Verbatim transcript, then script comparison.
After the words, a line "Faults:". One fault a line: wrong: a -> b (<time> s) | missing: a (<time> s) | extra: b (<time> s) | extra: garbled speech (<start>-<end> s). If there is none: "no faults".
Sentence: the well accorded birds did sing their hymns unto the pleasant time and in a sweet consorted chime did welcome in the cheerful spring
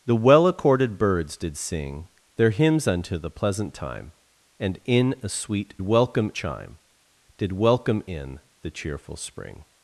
the well accorded birds did sing their hymns unto the pleasant time and in a sweet welcome chime did welcome in the cheerful spring
Faults:
wrong: consorted -> welcome (5.8 s)